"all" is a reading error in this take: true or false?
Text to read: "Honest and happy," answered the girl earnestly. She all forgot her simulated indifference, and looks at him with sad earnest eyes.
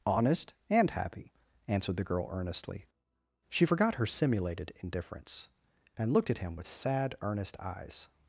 true